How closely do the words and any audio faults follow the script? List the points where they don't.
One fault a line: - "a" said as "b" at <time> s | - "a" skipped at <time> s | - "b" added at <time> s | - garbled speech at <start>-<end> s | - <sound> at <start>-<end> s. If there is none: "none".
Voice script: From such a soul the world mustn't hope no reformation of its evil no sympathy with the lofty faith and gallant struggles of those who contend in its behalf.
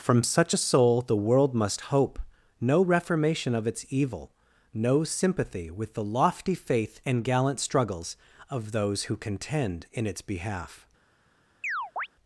- "mustn't" said as "must" at 1.5 s
- chirp at 11.6-12.1 s